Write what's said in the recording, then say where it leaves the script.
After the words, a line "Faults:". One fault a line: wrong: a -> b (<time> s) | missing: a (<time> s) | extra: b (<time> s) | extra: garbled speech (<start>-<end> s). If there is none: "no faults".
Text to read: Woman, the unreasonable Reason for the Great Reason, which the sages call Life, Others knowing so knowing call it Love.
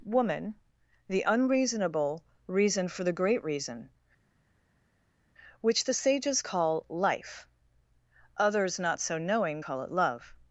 Woman, the unreasonable Reason for the Great Reason, which the sages call Life, Others not so knowing call it Love.
Faults:
wrong: knowing -> not (8.8 s)